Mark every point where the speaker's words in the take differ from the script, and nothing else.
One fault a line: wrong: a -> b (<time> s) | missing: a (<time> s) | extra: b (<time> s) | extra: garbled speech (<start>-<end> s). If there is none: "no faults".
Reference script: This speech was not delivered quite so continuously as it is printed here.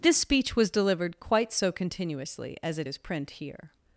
missing: not (0.7 s)
wrong: printed -> print (3.0 s)